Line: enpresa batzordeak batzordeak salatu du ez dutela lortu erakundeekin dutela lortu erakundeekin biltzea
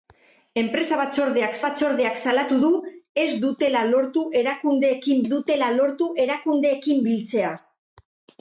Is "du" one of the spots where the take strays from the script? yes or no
no